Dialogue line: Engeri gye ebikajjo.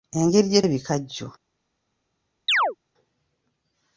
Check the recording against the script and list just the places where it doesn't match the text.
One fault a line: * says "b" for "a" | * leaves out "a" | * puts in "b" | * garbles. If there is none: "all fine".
all fine